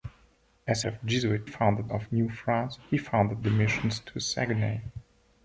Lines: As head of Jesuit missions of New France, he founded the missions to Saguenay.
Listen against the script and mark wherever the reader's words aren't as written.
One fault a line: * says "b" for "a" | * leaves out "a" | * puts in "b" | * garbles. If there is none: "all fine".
* leaves out "head"
* says "founded" for "missions"